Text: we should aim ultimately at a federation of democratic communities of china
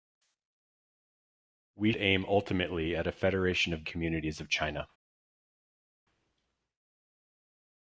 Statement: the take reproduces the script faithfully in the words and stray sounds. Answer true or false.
false